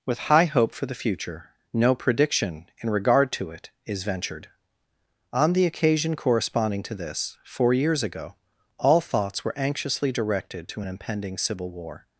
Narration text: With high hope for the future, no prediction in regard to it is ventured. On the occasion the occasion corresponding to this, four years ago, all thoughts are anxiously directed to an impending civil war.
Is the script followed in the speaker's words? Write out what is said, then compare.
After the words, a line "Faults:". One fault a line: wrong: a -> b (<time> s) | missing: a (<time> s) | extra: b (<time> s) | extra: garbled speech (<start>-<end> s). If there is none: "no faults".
With high hope for the future, no prediction in regard to it is ventured. On the occasion corresponding to this, four years ago, all thoughts were anxiously directed to an impending civil war.
Faults:
missing: the occasion (6.2 s)
wrong: are -> were (9.4 s)